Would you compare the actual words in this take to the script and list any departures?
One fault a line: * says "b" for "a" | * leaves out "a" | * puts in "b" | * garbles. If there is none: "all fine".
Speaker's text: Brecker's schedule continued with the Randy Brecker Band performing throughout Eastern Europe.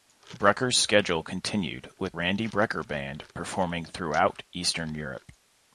* leaves out "the"